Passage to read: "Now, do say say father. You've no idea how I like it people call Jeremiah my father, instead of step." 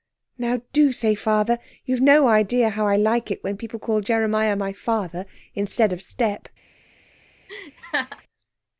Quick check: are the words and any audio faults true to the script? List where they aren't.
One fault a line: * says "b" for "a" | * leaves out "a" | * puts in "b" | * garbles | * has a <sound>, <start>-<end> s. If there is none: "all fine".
* leaves out "say"
* puts in "when"
* has a laugh, 7.5-8.2 s